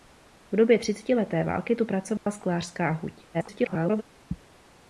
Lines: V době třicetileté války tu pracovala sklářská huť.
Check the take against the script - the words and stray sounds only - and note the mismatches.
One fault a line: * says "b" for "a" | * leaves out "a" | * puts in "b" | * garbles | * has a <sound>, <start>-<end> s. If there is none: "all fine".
* has a dropout, 2.2-2.3 s
* garbles